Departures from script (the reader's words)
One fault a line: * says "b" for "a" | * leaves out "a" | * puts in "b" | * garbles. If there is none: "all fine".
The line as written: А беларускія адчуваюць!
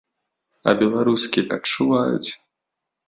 all fine